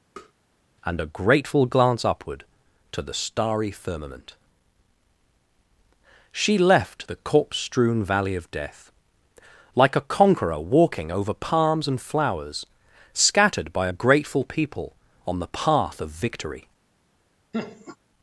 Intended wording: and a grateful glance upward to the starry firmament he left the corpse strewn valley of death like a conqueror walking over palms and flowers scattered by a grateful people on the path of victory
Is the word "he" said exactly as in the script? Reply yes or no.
no